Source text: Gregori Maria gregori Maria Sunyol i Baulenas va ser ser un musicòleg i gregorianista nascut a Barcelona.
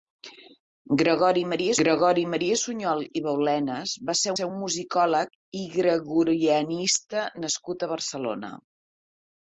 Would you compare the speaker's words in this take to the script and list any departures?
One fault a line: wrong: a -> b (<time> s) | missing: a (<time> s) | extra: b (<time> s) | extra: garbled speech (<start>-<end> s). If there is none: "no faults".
no faults